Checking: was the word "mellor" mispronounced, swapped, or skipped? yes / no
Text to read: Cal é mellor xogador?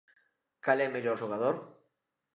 no